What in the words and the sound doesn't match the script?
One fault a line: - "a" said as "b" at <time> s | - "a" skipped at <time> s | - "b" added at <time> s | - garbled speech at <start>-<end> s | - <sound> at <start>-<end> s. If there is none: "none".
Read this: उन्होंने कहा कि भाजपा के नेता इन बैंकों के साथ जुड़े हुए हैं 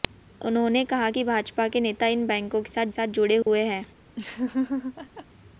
- "साथ" added at 2.9 s
- dropout at 3.4-3.5 s
- laugh at 4.2-5.3 s